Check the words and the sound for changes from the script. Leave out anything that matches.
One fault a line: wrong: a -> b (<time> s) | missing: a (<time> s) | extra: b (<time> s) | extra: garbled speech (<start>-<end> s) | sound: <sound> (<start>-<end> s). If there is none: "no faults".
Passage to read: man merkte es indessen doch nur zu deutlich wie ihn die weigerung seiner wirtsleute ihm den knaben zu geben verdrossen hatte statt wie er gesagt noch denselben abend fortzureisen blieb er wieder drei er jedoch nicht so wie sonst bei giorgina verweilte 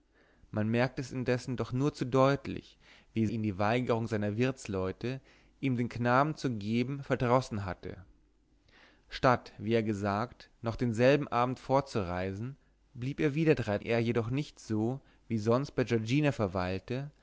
no faults